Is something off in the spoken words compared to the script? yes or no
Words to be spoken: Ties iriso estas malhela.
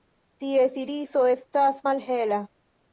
no